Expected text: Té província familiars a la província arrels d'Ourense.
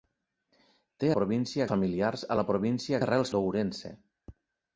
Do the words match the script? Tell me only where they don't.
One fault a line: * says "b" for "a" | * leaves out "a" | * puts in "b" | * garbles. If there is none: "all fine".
all fine